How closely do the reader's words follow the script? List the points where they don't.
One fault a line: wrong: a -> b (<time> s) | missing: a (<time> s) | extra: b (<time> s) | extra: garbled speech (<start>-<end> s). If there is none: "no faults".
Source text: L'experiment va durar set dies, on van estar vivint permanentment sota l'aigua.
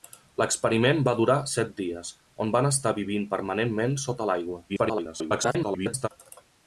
extra: garbled speech (4.7-6.1 s)